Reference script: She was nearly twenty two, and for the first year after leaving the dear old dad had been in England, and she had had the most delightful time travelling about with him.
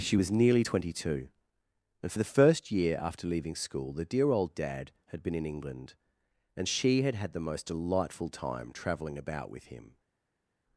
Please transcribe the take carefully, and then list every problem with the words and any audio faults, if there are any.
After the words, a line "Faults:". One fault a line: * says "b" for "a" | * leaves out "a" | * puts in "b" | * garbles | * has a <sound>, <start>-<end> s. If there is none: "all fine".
She was nearly twenty two, and for the first year after leaving school the dear old dad had been in England, and she had had the most delightful time travelling about with him.
Faults:
* puts in "school"